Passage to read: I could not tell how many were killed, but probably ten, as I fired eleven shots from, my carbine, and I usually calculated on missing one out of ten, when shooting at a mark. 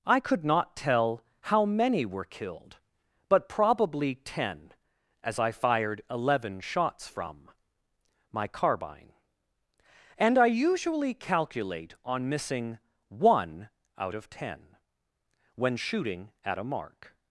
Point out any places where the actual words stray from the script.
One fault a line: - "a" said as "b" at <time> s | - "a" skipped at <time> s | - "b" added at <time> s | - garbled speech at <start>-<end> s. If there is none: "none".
- "calculated" said as "calculate" at 11.1 s